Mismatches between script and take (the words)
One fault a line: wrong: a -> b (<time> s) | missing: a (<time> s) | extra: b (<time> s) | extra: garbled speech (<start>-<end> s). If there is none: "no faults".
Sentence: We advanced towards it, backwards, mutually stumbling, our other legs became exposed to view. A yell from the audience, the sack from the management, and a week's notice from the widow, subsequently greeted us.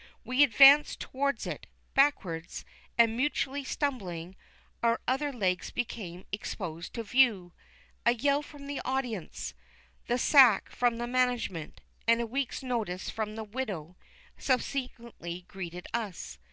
extra: and (3.0 s)